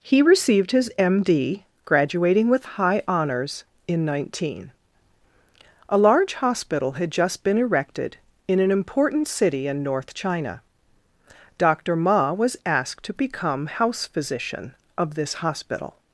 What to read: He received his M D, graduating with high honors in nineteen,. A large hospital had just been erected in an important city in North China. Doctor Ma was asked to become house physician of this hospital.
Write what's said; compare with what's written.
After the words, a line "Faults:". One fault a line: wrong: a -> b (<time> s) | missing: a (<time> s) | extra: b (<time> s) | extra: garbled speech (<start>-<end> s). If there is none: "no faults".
He received his M D, graduating with high honors in nineteen,. A large hospital had just been erected in an important city in North China. Doctor Ma was asked to become house physician of this hospital.
Faults:
no faults